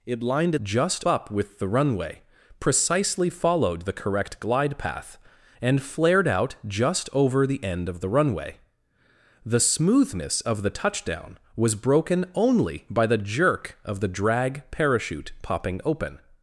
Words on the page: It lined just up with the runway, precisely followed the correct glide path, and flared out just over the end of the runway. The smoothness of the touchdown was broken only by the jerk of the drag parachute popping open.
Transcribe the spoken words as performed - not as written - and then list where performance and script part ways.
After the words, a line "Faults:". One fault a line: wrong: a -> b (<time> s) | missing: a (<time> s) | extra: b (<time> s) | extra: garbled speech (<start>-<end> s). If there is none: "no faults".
It lined just up with the runway, precisely followed the correct glide path, and flared out just over the end of the runway. The smoothness of the touchdown was broken only by the jerk of the drag parachute popping open.
Faults:
no faults